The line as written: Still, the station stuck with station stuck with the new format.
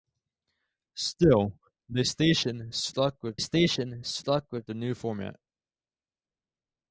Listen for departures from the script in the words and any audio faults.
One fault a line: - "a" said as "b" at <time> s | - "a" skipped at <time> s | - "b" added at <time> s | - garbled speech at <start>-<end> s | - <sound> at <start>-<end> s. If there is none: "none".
none